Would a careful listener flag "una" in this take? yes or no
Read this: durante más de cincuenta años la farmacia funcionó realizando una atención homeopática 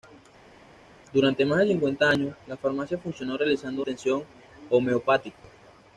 yes